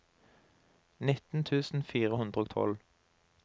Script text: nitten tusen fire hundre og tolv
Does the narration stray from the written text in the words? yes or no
no